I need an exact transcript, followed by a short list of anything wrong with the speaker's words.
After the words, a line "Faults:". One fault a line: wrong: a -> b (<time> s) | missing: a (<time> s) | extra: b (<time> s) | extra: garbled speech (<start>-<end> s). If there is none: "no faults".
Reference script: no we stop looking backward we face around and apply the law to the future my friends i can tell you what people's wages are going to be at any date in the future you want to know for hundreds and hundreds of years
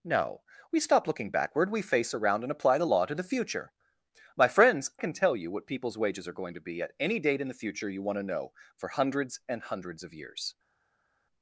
no we stop looking backward we face around and apply the law to the future my friends can tell you what people's wages are going to be at any date in the future you want to know for hundreds and hundreds of years
Faults:
missing: i (4.9 s)